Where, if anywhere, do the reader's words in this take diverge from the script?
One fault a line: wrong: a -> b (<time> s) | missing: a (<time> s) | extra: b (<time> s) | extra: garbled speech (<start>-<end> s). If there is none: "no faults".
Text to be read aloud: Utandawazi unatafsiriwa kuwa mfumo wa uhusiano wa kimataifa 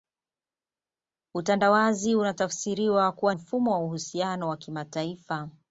no faults